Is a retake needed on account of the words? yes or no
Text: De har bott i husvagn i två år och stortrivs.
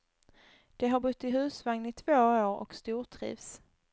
no